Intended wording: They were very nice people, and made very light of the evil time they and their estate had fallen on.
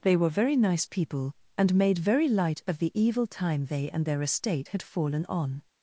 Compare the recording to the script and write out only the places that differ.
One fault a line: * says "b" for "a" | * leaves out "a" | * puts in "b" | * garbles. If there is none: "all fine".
all fine